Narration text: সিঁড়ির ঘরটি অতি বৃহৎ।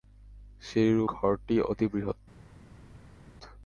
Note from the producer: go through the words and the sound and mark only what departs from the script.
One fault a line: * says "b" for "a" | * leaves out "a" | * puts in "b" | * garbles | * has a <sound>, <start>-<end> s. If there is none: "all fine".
all fine